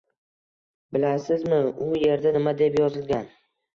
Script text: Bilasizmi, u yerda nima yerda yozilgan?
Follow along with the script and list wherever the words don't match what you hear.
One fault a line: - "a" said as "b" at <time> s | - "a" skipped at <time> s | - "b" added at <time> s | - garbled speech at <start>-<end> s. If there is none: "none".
- "yerda" said as "deb" at 2.6 s